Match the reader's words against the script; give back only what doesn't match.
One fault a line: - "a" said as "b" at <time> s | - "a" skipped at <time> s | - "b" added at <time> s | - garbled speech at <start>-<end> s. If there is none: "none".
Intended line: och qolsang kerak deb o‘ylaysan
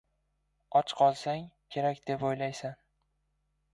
none